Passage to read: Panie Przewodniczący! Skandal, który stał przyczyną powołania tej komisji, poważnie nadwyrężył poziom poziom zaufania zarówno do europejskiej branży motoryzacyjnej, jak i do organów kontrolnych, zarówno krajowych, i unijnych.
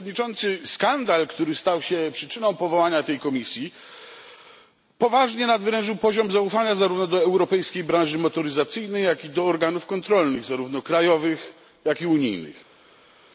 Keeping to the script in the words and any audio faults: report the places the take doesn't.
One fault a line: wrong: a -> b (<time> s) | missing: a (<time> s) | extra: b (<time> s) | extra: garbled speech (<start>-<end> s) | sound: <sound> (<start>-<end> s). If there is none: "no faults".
extra: się (1.8 s)
missing: poziom (6.3 s)
extra: jak (11.8 s)